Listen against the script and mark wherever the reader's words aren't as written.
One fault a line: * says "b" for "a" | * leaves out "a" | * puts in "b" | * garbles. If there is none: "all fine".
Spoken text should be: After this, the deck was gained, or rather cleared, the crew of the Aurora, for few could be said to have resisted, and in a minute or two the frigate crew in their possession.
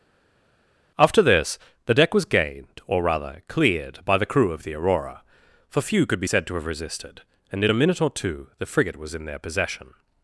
* puts in "by"
* says "was" for "crew"